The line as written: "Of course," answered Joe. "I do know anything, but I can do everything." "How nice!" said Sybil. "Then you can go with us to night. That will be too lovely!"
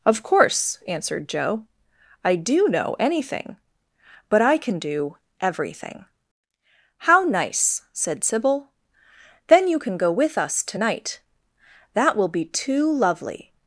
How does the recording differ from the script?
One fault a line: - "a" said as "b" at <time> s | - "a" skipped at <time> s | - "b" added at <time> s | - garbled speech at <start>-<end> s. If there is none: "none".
none